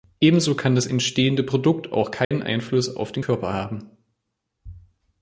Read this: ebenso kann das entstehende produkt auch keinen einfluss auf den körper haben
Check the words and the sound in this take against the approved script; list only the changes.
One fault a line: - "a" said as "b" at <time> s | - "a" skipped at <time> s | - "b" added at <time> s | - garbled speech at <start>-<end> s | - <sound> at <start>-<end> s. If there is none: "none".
- dropout at 2.2-2.3 s